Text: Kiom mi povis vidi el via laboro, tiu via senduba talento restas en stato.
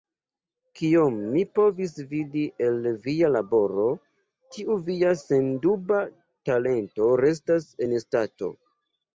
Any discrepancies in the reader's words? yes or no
no